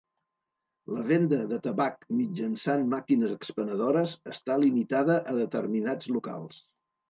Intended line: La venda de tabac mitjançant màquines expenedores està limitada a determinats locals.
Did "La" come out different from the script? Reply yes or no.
no